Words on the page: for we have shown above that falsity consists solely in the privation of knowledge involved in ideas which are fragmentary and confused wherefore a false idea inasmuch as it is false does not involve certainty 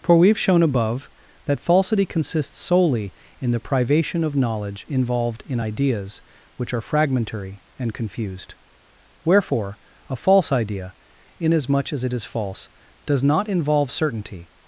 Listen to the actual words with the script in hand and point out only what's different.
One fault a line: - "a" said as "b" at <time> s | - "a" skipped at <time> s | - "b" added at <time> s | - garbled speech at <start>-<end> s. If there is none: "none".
none